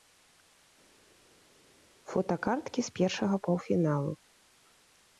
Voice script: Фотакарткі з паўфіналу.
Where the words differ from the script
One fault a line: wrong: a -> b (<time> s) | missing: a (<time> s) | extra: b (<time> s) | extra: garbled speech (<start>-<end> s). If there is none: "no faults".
extra: першага (3.0 s)